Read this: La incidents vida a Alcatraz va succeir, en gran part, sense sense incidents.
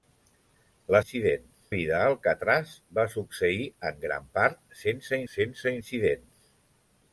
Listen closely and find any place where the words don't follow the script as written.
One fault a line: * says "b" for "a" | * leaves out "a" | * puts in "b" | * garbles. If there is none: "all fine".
all fine